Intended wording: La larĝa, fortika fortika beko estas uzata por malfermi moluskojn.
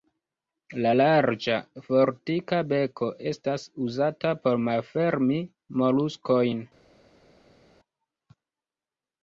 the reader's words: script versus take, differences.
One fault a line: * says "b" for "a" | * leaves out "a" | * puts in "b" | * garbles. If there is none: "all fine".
* leaves out "fortika"